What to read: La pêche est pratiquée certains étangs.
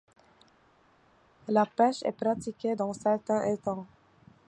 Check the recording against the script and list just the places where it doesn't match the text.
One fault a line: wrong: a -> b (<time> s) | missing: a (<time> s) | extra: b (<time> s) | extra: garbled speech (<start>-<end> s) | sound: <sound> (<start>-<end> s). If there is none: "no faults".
extra: dans (2.7 s)